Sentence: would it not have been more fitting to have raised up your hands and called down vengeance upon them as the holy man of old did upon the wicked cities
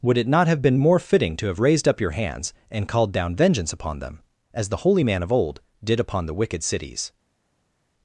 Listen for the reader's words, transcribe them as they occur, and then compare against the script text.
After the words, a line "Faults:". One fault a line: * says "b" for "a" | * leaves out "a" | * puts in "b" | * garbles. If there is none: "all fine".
would it not have been more fitting to have raised up your hands and called down vengeance upon them as the holy man of old did upon the wicked cities
Faults:
all fine